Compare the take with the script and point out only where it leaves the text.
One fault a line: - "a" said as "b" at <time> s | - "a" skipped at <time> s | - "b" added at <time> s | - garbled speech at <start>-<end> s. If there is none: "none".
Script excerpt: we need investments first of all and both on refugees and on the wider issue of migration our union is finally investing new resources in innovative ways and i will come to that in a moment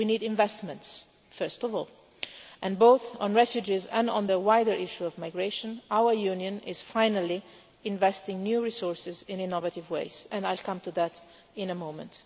none